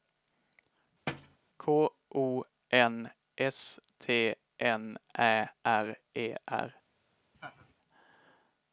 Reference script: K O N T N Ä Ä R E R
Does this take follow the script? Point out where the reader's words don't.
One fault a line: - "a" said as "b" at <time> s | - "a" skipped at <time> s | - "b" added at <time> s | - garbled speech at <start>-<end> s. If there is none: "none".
- "S" added at 3.4 s
- "Ä" skipped at 5.5 s